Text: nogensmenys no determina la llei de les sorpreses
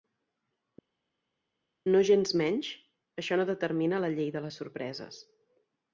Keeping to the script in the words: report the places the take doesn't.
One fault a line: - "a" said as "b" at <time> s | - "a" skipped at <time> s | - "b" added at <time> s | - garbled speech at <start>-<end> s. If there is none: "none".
- "això" added at 3.2 s